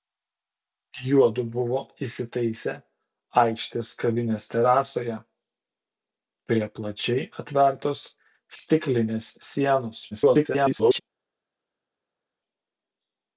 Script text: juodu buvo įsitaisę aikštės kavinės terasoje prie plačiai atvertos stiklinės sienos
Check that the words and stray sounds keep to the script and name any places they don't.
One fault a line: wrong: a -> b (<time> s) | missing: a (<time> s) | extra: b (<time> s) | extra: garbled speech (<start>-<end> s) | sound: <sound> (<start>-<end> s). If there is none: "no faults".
extra: garbled speech (10.1-11.0 s)